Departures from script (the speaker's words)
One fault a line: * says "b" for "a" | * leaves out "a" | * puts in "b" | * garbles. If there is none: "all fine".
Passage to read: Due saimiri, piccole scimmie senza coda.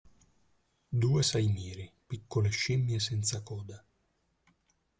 all fine